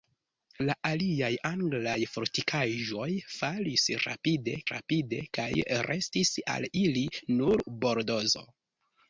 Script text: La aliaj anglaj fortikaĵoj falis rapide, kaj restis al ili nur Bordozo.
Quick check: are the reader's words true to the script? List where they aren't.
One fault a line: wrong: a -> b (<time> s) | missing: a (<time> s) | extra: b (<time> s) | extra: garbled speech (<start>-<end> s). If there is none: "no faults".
extra: rapide (4.7 s)